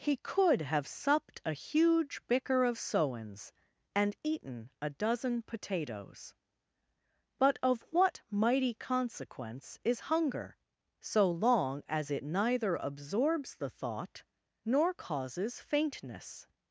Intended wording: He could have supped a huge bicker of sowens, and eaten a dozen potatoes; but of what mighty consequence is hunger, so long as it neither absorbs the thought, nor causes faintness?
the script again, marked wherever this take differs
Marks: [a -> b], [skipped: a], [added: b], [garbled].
He could have supped a huge bicker of sowens, and eaten a dozen potatoes; but of what mighty consequence is hunger, so long as it neither absorbs the thought, nor causes faintness?